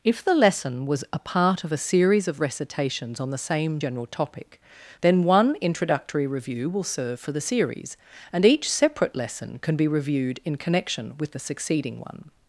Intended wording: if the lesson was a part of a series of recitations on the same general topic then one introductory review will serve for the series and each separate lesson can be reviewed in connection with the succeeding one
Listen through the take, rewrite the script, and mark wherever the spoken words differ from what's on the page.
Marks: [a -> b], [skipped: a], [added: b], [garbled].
if the lesson was a part of a series of recitations on the same general topic then one introductory review will serve for the series and each separate lesson can be reviewed in connection with the succeeding one